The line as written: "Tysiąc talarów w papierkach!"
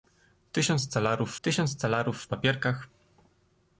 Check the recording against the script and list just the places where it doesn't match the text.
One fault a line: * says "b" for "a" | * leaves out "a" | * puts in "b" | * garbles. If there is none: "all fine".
* puts in "tysiąc talarów"